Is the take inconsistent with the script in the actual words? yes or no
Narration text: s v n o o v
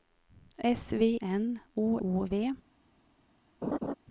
no